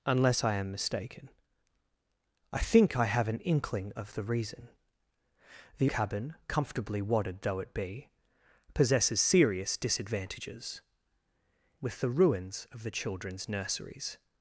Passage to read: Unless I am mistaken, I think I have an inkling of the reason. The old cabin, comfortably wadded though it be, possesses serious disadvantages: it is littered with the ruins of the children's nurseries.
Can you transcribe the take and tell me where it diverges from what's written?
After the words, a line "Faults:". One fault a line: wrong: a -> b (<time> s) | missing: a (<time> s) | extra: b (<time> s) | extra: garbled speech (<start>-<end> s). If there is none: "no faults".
Unless I am mistaken, I think I have an inkling of the reason. The cabin, comfortably wadded though it be, possesses serious disadvantages: with the ruins of the children's nurseries.
Faults:
missing: old (5.9 s)
missing: it is littered (10.8 s)